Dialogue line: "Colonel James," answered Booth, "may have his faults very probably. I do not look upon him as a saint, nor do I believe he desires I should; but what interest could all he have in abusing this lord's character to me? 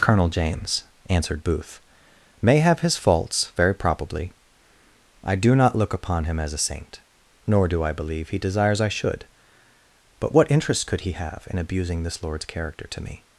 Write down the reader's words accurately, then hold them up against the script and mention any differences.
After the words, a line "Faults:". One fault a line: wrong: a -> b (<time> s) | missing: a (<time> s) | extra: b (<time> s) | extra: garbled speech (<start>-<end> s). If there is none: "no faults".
"Colonel James," answered Booth, "may have his faults very probably. I do not look upon him as a saint, nor do I believe he desires I should; but what interest could he have in abusing this lord's character to me?
Faults:
missing: all (11.0 s)